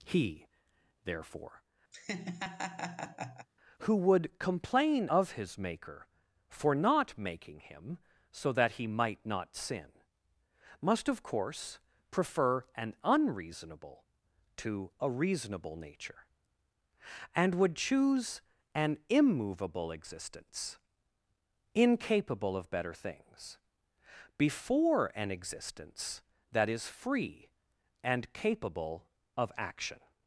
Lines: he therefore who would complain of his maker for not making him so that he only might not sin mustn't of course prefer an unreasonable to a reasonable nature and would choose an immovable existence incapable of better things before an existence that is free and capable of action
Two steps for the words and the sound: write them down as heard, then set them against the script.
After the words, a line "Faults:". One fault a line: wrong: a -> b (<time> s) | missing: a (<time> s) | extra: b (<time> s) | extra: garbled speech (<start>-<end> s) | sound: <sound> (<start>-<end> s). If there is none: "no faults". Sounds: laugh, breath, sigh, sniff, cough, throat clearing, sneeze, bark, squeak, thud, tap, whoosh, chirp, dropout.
he therefore who would complain of his maker for not making him so that he might not sin must of course prefer an unreasonable to a reasonable nature and would choose an immovable existence incapable of better things before an existence that is free and capable of action
Faults:
sound: laugh (1.9-3.5 s)
missing: only (8.9 s)
wrong: mustn't -> must (10.8 s)